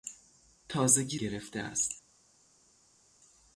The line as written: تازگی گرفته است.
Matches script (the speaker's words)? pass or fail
pass